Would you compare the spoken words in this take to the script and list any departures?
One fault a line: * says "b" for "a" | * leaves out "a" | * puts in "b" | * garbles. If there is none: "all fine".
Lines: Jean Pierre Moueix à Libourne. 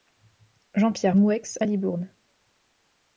all fine